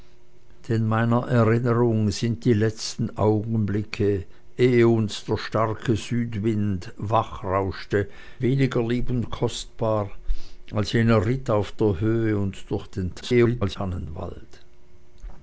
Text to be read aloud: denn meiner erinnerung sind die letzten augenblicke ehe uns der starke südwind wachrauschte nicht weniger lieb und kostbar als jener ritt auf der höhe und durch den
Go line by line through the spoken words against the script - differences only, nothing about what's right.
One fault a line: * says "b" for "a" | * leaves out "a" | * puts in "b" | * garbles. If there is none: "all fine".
* leaves out "nicht"
* garbles